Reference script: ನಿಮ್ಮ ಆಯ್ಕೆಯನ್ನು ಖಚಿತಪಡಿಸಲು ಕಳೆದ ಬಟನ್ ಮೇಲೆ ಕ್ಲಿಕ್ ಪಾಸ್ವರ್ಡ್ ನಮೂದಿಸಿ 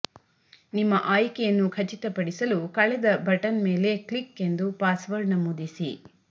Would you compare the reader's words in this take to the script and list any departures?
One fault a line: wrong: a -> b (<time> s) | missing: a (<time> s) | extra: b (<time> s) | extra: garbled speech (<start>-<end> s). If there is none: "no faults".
extra: ಎಂದು (4.4 s)